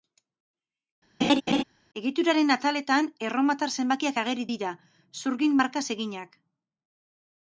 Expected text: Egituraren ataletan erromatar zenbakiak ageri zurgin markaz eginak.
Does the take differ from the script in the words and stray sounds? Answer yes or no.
yes